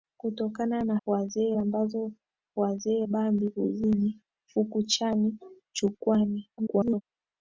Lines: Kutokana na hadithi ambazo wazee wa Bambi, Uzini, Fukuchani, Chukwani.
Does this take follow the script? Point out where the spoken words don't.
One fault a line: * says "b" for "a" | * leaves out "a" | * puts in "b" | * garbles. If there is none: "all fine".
* says "wazee" for "hadithi"
* leaves out "wa"
* garbles